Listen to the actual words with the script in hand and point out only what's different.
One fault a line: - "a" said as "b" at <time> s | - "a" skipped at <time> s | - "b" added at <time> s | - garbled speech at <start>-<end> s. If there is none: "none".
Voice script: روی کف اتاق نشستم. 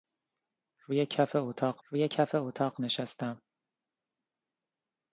- "روی کف اتاق" added at 1.9 s